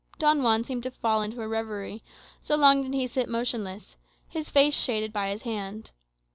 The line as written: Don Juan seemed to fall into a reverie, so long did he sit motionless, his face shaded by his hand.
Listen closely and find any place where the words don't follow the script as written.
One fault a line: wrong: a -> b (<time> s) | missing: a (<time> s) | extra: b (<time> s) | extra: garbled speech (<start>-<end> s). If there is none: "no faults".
no faults